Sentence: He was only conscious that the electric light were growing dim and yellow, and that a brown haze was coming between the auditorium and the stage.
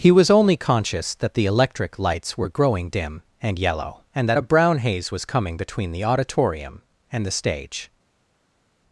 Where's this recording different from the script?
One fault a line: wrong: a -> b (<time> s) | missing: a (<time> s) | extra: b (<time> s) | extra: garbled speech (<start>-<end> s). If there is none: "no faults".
wrong: light -> lights (2.0 s)